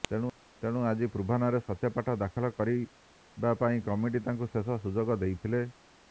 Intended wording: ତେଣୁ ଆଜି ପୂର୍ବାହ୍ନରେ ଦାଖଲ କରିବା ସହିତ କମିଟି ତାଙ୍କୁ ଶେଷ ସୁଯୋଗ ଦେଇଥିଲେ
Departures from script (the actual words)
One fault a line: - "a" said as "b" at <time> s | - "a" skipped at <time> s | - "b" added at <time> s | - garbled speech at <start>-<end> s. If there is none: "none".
- "ସତ୍ୟପାଠ" added at 1.6 s
- "ସହିତ" said as "ପାଇଁ" at 3.6 s